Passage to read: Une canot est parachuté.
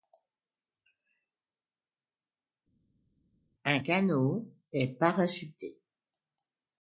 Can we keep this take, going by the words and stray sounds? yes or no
no